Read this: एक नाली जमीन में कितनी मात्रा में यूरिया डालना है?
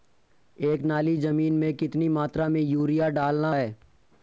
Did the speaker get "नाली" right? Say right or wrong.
right